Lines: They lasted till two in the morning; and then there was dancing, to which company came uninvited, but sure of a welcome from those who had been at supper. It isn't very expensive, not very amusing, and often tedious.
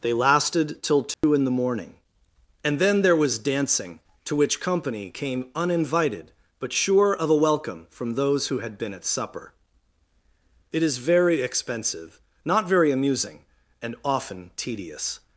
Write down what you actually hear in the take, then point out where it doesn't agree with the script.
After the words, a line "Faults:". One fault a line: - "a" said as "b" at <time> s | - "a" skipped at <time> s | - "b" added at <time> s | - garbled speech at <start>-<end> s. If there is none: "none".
They lasted till two in the morning; and then there was dancing, to which company came uninvited, but sure of a welcome from those who had been at supper. It is very expensive, not very amusing, and often tedious.
Faults:
- "isn't" said as "is" at 10.8 s